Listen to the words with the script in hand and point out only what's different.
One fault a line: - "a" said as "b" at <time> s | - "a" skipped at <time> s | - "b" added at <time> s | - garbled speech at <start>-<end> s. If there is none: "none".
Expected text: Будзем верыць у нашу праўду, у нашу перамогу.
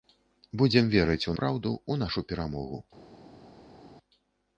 - "нашу" skipped at 1.4 s